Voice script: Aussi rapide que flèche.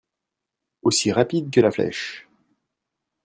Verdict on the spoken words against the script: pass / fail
fail